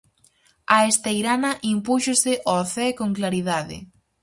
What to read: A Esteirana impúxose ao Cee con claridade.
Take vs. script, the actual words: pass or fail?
pass